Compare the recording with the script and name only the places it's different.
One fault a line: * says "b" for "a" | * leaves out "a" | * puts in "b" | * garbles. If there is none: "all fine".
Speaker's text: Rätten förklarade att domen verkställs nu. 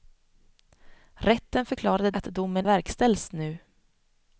all fine